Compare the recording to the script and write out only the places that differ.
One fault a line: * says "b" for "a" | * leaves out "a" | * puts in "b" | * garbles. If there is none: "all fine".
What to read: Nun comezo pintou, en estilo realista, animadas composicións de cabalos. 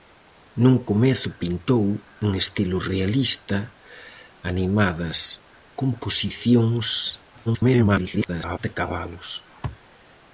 * garbles